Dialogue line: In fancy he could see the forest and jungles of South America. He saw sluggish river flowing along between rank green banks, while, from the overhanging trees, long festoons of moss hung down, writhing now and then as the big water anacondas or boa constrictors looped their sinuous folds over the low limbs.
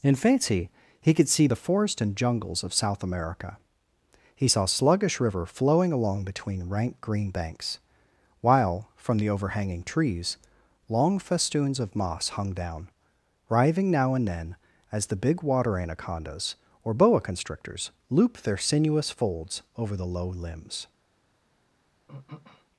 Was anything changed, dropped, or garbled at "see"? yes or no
no